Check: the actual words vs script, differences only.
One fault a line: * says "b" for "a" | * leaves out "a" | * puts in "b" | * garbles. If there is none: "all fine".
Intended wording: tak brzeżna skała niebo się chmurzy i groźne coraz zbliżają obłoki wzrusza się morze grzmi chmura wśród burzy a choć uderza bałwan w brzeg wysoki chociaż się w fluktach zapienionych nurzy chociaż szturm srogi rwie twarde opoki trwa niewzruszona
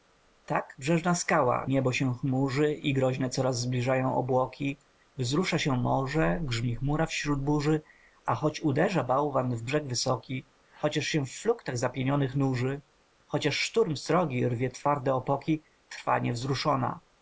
all fine